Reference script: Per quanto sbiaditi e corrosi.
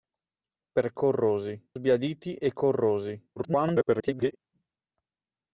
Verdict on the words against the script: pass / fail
fail